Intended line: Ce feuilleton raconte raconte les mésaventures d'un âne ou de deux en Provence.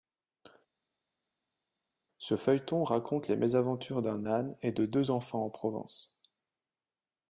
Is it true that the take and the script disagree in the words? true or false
true